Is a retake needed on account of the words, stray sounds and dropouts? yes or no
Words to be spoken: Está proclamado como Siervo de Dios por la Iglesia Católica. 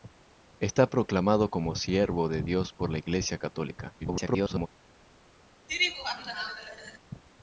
yes